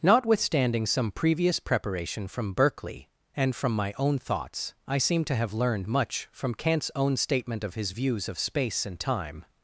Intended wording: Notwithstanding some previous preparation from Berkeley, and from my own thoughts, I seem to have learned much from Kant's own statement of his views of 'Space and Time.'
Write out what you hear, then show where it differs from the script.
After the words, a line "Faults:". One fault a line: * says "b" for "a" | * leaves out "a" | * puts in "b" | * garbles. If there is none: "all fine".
Notwithstanding some previous preparation from Berkeley, and from my own thoughts, I seem to have learned much from Kant's own statement of his views of 'Space and Time.'
Faults:
all fine